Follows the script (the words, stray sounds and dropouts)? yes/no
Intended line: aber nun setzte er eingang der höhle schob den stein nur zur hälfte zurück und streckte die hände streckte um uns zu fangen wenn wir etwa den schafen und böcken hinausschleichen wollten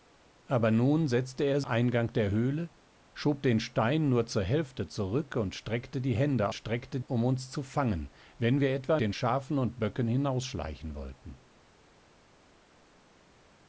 yes